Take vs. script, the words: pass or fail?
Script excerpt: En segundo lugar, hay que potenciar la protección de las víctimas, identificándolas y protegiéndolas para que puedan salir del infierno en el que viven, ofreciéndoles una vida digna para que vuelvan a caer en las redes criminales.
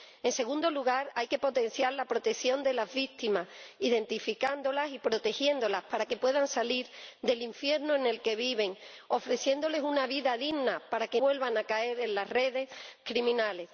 pass